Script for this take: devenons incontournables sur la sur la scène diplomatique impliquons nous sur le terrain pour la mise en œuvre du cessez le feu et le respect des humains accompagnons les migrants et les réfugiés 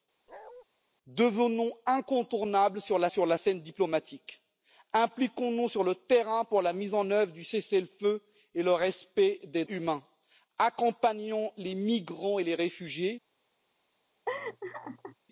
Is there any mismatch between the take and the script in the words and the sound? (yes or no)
yes